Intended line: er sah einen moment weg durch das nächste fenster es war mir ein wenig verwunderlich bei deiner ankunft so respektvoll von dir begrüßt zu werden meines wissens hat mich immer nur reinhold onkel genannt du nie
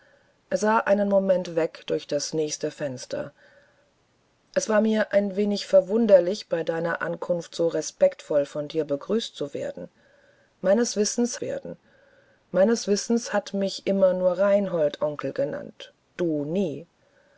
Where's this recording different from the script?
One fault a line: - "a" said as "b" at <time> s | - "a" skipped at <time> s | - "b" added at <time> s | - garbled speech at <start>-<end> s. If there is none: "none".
- "werden meines wissens" added at 11.4 s